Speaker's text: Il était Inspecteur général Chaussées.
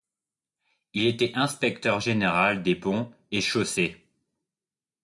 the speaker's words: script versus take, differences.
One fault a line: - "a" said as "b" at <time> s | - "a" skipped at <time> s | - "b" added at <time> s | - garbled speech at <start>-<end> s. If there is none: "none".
- "des Ponts et" added at 2.6 s